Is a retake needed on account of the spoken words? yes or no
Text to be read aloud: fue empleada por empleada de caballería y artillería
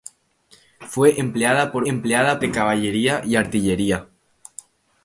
no